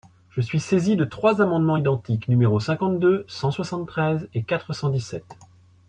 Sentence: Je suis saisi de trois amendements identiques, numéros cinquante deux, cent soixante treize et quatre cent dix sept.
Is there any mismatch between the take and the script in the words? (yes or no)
no